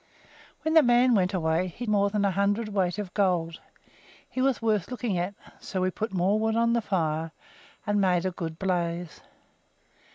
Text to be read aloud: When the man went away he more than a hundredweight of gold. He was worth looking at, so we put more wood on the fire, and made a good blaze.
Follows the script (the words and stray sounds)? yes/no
yes